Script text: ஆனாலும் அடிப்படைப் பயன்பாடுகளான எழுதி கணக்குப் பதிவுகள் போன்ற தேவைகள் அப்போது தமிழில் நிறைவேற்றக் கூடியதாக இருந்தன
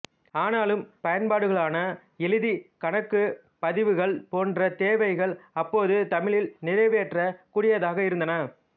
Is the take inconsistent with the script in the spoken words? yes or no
yes